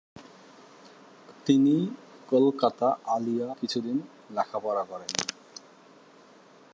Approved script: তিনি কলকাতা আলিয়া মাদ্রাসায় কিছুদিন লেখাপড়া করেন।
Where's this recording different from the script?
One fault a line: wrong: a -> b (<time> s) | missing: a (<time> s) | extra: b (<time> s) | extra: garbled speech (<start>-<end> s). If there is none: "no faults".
missing: মাদ্রাসায় (3.5 s)